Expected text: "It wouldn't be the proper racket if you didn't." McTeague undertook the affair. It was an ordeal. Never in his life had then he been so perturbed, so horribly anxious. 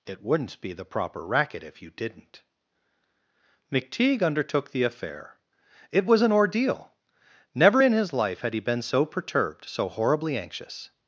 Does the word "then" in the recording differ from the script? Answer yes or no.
yes